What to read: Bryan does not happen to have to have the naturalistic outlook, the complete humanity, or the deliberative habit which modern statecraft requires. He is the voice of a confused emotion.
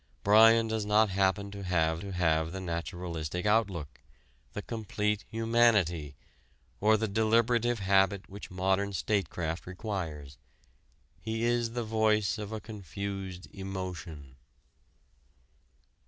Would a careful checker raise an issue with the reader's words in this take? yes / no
no